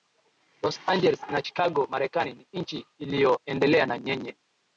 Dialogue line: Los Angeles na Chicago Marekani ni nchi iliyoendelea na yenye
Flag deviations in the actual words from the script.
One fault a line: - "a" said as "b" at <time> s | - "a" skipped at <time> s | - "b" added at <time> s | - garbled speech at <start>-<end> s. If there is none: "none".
none